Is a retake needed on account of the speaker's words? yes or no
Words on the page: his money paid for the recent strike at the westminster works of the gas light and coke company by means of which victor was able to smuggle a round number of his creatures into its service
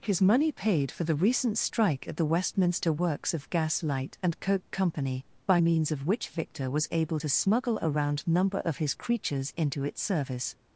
yes